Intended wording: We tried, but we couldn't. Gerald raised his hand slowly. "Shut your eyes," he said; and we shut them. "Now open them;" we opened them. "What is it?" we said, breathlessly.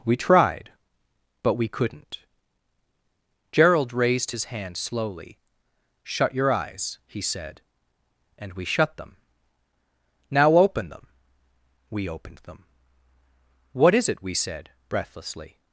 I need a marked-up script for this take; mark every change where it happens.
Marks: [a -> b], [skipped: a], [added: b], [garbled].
We tried, but we couldn't. Gerald raised his hand slowly. "Shut your eyes," he said; and we shut them. "Now open them;" we opened them. "What is it?" we said, breathlessly.